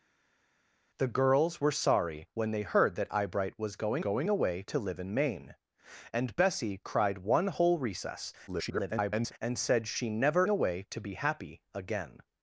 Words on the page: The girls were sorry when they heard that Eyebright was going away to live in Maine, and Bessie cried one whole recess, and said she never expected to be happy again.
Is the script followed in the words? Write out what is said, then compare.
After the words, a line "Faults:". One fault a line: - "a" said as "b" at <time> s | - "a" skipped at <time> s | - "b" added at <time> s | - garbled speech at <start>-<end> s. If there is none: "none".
The girls were sorry when they heard that Eyebright was going going away to live in Maine, and Bessie cried one whole recess, [garbled] and said she never away to be happy again.
Faults:
- "going" added at 4.0 s
- garbled speech at 8.5-9.3 s
- "expected" said as "away" at 10.5 s